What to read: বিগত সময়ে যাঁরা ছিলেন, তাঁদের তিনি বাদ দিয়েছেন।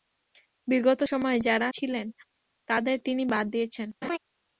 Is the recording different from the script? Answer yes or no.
no